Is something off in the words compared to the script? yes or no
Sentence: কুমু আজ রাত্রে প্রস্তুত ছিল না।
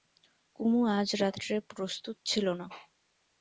no